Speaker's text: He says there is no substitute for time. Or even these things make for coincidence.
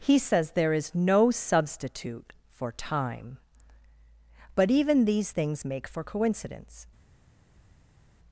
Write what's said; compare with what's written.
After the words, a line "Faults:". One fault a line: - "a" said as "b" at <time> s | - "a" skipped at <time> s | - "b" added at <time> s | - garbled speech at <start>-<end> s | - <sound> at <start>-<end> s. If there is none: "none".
He says there is no substitute for time. But even these things make for coincidence.
Faults:
- "Or" said as "But" at 4.5 s